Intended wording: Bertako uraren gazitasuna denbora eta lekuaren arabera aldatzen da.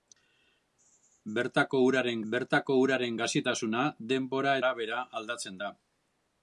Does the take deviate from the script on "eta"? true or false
true